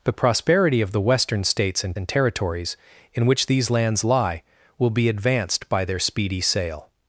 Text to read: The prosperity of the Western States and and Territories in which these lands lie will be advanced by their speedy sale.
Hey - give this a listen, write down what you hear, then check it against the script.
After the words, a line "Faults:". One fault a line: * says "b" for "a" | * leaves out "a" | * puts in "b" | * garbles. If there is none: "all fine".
The prosperity of the Western States and and Territories in which these lands lie will be advanced by their speedy sale.
Faults:
all fine